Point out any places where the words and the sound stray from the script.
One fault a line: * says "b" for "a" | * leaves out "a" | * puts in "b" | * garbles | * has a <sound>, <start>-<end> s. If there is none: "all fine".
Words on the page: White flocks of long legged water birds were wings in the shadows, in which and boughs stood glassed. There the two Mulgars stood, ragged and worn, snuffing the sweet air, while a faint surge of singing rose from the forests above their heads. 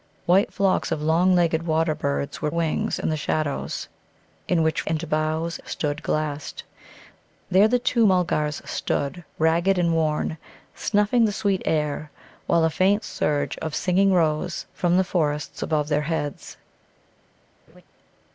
* has a laugh, 17.7-17.8 s